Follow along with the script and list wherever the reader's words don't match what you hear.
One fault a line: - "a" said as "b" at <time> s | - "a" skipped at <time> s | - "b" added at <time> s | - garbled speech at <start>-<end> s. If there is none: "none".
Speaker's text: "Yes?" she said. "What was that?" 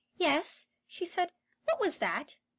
none